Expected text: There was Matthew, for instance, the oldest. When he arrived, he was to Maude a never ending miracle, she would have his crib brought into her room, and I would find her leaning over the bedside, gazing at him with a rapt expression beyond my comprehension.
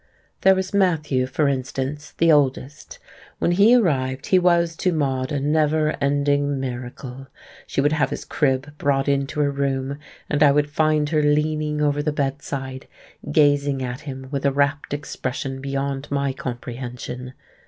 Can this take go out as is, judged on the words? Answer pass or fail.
pass